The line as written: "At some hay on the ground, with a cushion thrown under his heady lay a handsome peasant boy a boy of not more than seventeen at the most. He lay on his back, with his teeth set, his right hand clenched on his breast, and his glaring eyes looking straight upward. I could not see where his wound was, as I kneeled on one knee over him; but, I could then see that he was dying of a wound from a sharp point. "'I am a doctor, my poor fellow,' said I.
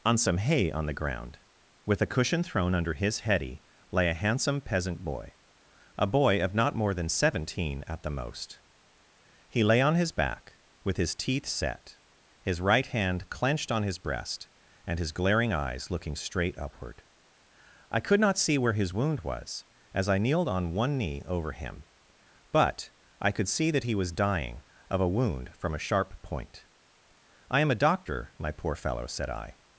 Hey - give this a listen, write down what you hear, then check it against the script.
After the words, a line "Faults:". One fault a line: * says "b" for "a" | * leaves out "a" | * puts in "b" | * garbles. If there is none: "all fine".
"On some hay on the ground, with a cushion thrown under his heady lay a handsome peasant boy a boy of not more than seventeen at the most. He lay on his back, with his teeth set, his right hand clenched on his breast, and his glaring eyes looking straight upward. I could not see where his wound was, as I kneeled on one knee over him; but, I could see that he was dying of a wound from a sharp point. "'I am a doctor, my poor fellow,' said I.
Faults:
* says "On" for "At"
* leaves out "then"